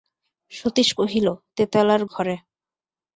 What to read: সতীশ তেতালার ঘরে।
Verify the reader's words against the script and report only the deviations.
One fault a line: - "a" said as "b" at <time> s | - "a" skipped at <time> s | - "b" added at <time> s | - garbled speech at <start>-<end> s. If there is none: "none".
- "কহিল" added at 1.0 s